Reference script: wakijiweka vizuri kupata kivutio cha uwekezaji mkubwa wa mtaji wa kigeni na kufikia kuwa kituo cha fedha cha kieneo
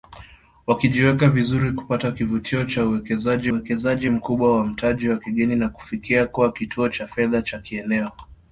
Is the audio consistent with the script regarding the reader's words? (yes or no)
no